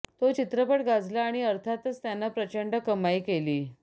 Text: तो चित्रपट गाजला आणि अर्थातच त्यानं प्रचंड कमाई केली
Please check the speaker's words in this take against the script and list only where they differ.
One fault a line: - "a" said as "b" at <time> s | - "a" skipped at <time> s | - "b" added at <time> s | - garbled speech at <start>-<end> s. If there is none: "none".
none